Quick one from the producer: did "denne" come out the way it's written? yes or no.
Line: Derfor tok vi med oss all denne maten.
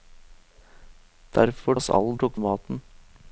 no